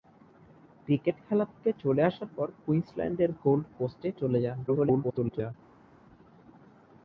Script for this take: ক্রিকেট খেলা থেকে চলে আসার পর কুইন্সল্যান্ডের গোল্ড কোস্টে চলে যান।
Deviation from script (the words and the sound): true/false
true